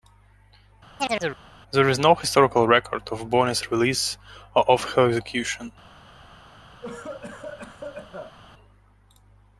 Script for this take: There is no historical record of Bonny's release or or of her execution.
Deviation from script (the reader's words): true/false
true